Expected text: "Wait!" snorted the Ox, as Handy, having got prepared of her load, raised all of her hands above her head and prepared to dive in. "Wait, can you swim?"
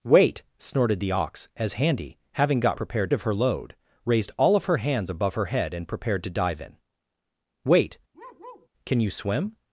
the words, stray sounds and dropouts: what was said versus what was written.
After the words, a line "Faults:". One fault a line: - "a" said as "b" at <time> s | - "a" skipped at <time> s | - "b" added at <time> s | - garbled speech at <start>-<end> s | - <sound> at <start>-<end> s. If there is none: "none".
"Wait!" snorted the Ox, as Handy, having got prepared of her load, raised all of her hands above her head and prepared to dive in. "Wait, can you swim?"
Faults:
- bark at 8.1-8.7 s